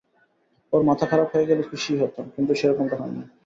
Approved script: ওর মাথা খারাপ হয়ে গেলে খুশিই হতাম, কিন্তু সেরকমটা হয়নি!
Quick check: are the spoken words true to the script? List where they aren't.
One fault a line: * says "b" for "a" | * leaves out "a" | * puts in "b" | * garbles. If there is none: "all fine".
all fine